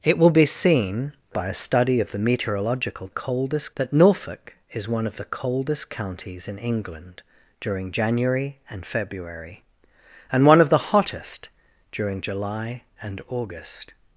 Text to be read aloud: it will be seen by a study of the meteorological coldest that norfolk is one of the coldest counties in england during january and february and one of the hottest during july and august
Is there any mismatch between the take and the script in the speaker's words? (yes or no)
no